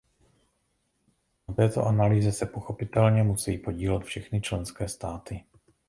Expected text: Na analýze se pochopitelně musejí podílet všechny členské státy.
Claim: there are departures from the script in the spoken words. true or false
true